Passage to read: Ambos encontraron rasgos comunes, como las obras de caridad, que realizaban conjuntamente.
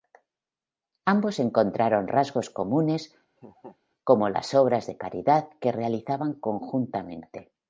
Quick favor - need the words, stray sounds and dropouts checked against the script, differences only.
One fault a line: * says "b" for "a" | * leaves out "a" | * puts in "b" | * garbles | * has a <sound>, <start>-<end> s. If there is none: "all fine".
* has a laugh, 3.4-3.8 s